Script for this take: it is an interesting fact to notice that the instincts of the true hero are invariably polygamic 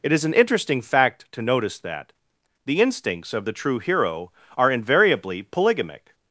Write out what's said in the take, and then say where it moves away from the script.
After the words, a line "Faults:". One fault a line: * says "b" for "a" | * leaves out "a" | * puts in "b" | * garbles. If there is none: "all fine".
it is an interesting fact to notice that the instincts of the true hero are invariably polygamic
Faults:
all fine